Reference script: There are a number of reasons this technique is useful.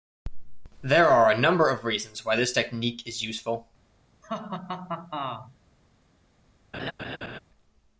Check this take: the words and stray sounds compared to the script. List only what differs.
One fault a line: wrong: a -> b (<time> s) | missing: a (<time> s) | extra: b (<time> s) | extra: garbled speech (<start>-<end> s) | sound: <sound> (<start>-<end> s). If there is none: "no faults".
extra: why (2.2 s)
sound: laugh (4.2-5.6 s)
sound: laugh (6.7-7.4 s)